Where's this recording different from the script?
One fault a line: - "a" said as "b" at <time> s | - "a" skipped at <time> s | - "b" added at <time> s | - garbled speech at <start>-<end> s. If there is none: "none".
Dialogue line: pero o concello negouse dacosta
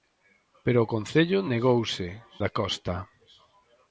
none